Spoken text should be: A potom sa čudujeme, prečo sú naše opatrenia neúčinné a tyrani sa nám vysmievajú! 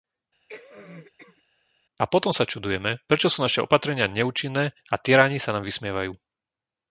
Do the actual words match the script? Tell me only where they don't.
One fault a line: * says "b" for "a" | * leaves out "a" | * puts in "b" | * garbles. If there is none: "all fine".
all fine